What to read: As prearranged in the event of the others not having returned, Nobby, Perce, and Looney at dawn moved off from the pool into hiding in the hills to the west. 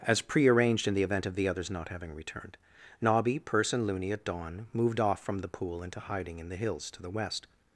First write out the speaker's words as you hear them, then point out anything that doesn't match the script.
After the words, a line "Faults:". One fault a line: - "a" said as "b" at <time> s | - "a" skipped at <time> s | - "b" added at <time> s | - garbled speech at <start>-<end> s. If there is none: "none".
As prearranged in the event of the others not having returned, Nobby, Perce, and Looney at dawn moved off from the pool into hiding in the hills to the west.
Faults:
none